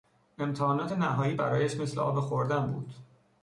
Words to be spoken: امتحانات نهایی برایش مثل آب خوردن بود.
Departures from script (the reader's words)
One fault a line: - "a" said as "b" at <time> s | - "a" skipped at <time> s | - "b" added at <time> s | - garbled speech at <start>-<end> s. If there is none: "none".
none